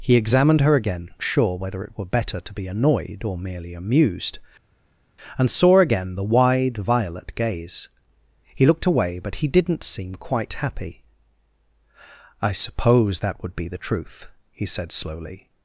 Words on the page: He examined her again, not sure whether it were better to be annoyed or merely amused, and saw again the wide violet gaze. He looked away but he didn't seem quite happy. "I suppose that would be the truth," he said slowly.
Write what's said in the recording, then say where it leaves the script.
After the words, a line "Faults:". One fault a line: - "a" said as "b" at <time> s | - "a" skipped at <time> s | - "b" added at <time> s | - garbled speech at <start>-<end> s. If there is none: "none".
He examined her again, sure whether it were better to be annoyed or merely amused, and saw again the wide violet gaze. He looked away but he didn't seem quite happy. "I suppose that would be the truth," he said slowly.
Faults:
- "not" skipped at 1.1 s